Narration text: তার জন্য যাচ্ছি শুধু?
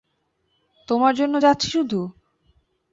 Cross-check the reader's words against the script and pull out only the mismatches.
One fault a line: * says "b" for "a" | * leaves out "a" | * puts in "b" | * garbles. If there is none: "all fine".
* says "তোমার" for "তার"